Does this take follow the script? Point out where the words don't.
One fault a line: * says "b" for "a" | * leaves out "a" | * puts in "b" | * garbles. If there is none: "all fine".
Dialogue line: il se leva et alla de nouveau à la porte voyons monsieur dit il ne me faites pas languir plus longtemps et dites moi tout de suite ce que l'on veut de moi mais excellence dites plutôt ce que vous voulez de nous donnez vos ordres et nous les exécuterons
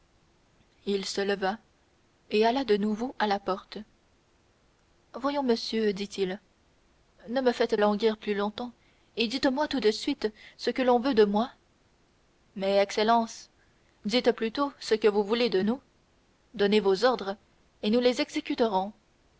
* leaves out "pas"